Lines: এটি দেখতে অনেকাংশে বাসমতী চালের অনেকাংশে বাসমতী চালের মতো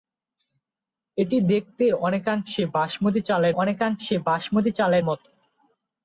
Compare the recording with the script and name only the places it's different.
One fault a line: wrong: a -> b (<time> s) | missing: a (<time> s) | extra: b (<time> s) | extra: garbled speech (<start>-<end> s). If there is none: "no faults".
no faults